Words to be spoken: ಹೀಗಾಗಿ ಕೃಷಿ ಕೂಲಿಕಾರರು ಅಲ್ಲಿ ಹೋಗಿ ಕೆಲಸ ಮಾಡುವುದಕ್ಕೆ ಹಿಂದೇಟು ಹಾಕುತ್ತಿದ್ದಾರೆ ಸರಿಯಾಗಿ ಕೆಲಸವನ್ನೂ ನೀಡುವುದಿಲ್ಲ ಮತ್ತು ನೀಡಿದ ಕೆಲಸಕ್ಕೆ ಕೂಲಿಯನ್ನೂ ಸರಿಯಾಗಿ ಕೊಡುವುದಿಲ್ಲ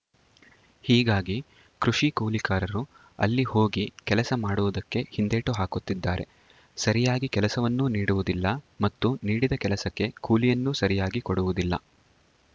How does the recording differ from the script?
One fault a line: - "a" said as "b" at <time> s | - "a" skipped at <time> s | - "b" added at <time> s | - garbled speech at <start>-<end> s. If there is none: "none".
none